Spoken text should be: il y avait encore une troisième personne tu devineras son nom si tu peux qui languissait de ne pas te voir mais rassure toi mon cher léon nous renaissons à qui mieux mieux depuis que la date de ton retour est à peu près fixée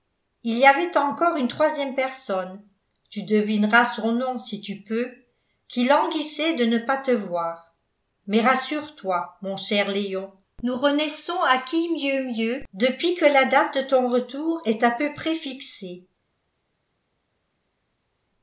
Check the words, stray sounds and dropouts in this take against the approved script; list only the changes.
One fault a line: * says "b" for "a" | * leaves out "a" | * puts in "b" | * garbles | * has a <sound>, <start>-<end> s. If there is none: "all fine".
all fine